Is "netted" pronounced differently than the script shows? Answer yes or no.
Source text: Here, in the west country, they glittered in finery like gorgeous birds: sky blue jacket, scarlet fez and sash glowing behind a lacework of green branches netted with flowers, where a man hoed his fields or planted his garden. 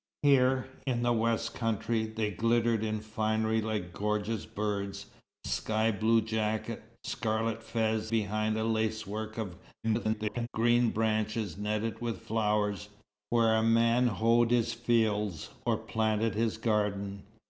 no